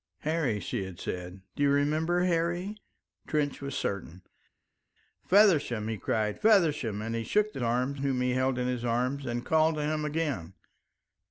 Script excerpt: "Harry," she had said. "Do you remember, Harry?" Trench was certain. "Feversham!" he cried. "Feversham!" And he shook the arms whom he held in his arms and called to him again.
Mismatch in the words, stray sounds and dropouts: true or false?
false